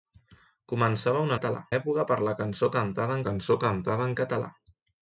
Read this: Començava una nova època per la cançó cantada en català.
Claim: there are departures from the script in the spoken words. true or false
true